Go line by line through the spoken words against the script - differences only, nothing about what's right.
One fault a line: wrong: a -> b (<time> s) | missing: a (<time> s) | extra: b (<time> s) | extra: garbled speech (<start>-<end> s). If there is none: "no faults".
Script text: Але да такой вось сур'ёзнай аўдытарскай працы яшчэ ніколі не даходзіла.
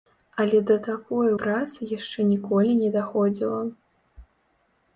missing: вось сур'ёзнай аўдытарскай (1.3 s)